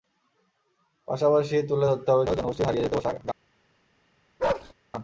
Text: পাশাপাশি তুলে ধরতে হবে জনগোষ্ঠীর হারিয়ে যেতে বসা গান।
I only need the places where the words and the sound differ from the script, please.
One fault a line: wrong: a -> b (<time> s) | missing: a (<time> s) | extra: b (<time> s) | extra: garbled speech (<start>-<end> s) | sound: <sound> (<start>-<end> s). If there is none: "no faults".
sound: bark (4.4-4.7 s)